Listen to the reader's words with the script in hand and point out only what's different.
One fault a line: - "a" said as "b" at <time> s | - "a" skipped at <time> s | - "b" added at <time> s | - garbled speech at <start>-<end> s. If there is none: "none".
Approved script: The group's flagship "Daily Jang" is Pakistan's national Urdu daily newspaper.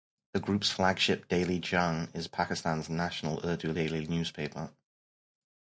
none